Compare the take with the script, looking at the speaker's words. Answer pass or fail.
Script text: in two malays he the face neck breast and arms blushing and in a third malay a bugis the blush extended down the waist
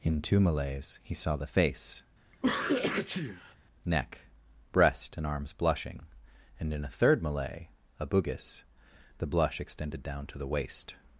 fail